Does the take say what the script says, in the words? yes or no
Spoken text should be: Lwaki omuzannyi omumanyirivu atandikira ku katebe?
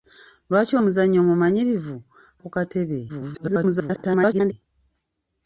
no